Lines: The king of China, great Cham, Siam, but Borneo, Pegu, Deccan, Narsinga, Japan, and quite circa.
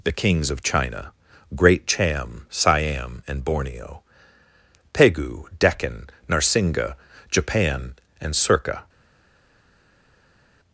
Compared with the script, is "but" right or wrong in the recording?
wrong